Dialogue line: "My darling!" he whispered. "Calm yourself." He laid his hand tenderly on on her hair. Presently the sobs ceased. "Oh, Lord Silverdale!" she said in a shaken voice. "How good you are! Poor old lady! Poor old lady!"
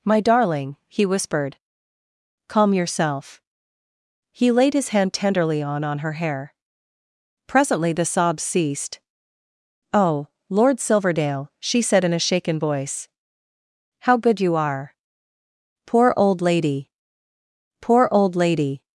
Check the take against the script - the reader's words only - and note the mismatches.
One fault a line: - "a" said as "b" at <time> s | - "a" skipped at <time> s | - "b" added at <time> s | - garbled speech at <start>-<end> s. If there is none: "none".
none